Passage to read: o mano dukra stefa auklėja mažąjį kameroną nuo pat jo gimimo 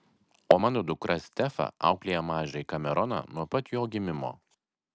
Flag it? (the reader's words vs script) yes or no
no